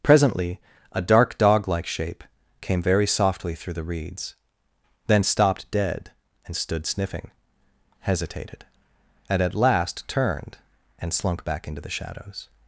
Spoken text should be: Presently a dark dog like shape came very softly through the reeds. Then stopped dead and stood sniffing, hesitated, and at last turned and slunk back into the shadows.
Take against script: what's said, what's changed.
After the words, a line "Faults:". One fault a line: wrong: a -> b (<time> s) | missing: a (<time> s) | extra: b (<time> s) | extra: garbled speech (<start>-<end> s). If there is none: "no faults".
Presently a dark dog like shape came very softly through the reeds. Then stopped dead and stood sniffing, hesitated, and at last turned and slunk back into the shadows.
Faults:
no faults